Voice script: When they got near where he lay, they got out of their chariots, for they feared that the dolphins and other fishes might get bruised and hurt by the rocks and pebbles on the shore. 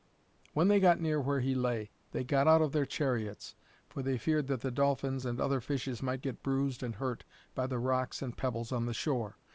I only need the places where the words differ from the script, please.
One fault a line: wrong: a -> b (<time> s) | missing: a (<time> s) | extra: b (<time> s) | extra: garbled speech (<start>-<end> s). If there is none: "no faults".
no faults